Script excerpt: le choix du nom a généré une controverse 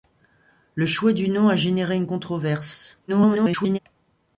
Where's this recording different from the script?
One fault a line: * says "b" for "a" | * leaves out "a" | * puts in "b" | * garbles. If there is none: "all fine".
* garbles